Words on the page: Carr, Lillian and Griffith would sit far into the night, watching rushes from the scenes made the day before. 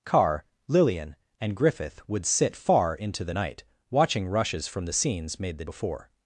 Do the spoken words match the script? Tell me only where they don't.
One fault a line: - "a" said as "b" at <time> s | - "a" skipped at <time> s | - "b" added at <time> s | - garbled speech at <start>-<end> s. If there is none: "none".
- "day" skipped at 5.6 s